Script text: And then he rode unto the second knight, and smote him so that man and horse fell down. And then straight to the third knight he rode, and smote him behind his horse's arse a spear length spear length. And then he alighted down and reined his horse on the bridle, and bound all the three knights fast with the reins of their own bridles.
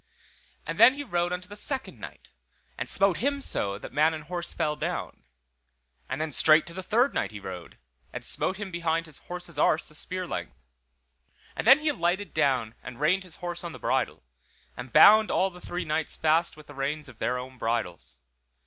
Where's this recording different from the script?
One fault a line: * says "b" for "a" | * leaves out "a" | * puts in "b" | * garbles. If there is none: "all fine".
* leaves out "spear length"